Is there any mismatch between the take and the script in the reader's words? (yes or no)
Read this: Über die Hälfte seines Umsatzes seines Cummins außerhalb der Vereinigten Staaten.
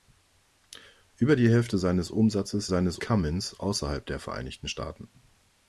no